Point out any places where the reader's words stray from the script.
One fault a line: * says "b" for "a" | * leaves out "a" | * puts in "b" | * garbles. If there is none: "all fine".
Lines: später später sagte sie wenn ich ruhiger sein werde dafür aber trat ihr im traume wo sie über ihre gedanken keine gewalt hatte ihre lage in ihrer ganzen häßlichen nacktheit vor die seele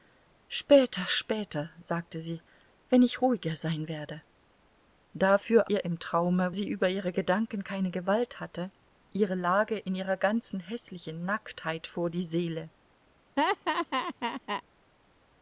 * leaves out "aber trat"
* leaves out "wo"